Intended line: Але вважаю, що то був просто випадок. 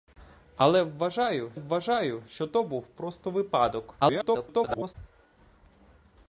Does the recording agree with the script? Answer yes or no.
no